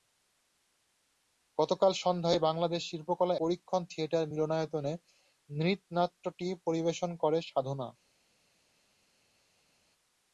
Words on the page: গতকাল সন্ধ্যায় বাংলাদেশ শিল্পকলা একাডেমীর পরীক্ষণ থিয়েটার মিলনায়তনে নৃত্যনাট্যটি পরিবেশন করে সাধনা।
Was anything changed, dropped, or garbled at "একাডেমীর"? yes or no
yes